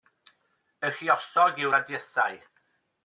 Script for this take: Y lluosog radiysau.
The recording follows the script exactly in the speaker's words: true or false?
false